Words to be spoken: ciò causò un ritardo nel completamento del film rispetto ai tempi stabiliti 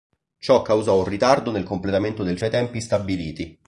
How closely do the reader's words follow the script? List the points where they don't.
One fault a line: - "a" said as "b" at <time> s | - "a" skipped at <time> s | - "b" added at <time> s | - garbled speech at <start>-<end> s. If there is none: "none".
- "film rispetto" skipped at 2.4 s